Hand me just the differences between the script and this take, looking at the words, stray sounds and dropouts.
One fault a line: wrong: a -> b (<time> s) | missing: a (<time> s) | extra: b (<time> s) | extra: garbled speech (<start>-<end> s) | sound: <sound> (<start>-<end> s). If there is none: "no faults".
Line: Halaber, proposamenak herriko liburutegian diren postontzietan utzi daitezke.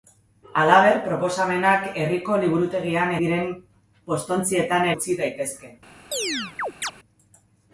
sound: chirp (6.1-6.9 s)